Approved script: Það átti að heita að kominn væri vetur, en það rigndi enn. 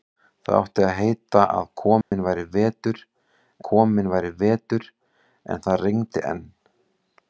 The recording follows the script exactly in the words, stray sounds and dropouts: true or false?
false